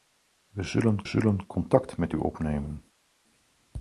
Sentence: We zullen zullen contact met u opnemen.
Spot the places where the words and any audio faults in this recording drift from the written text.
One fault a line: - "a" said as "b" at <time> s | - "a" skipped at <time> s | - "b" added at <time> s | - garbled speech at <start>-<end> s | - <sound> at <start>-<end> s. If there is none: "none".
none